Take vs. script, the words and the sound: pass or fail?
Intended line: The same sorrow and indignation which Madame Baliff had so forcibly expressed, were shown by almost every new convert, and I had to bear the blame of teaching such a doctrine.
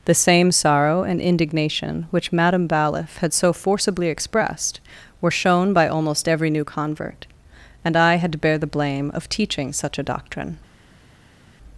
pass